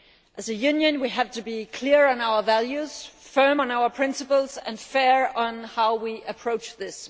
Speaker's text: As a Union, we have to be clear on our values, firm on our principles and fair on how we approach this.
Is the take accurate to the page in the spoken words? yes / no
yes